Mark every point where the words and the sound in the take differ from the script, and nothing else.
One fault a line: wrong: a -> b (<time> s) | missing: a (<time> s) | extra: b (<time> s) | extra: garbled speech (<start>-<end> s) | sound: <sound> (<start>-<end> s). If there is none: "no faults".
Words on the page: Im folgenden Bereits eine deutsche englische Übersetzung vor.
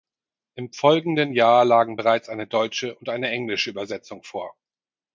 extra: Jahr lagen (1.3 s)
extra: und eine (3.0 s)